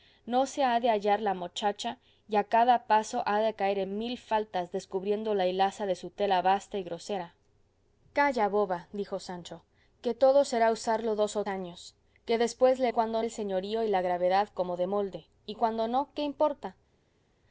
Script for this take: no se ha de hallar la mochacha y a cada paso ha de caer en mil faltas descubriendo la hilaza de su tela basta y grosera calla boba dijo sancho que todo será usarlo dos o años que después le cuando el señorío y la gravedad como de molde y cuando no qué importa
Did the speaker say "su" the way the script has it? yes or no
yes